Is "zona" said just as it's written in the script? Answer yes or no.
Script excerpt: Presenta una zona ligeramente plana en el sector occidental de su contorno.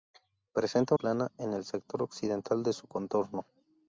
no